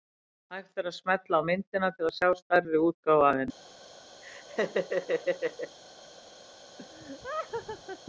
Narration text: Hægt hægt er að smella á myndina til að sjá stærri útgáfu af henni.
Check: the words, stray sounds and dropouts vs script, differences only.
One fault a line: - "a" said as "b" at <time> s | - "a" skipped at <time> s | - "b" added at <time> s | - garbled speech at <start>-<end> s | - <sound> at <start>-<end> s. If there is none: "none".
- "hægt" skipped at 0.8 s
- laugh at 4.2-5.8 s
- laugh at 6.8-8.0 s